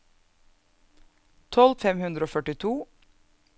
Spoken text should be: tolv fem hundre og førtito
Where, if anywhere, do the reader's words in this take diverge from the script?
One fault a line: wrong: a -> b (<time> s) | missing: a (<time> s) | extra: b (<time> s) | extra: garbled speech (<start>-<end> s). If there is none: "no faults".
no faults